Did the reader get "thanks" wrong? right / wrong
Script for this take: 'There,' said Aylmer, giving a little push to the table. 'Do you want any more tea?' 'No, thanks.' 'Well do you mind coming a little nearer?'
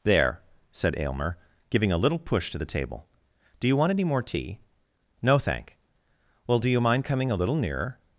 wrong